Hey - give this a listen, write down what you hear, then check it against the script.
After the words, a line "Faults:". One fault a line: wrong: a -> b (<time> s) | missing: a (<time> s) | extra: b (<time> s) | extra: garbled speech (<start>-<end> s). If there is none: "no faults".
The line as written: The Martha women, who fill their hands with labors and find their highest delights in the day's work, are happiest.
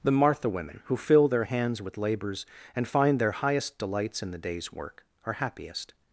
The Martha women, who fill their hands with labors and find their highest delights in the day's work, are happiest.
Faults:
no faults